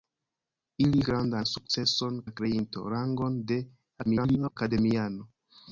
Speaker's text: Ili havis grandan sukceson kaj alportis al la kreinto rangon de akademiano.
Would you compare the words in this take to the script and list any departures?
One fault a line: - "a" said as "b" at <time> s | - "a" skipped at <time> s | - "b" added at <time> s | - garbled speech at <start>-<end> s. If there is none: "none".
- "havis" skipped at 1.0 s
- "kaj alportis al" skipped at 2.2 s
- garbled speech at 4.0-4.6 s